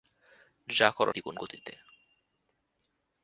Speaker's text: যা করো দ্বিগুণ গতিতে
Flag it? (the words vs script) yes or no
no